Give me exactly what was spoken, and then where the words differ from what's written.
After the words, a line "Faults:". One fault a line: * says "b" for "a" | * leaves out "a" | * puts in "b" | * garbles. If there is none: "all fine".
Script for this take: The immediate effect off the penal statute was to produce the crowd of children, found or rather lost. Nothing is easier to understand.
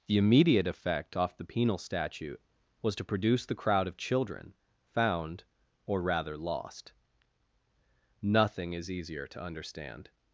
The immediate effect off the penal statute was to produce the crowd of children, found or rather lost. Nothing is easier to understand.
Faults:
all fine